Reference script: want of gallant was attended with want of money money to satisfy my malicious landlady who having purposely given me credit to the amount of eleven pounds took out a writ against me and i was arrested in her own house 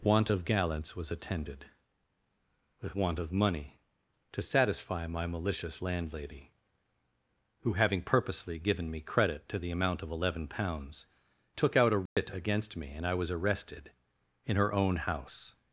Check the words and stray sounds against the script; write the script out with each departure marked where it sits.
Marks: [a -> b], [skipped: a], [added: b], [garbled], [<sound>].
want of [gallant -> gallants] was attended with want of money [skipped: money] to satisfy my malicious landlady who having purposely given me credit to the amount of eleven pounds took out a writ [dropout] against me and i was arrested in her own house